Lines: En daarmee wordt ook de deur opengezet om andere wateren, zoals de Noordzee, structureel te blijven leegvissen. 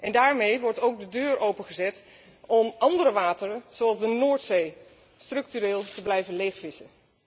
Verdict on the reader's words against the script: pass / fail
pass